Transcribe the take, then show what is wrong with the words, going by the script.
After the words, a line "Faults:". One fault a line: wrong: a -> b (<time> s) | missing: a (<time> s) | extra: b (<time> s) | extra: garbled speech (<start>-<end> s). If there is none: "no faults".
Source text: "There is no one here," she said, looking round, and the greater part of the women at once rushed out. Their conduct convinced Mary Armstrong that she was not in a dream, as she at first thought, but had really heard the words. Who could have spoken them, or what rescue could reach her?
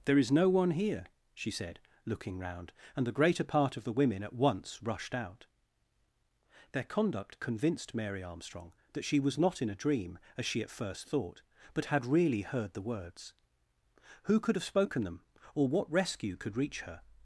"There is no one here," she said, looking round, and the greater part of the women at once rushed out. Their conduct convinced Mary Armstrong that she was not in a dream, as she at first thought, but had really heard the words. Who could have spoken them, or what rescue could reach her?
Faults:
no faults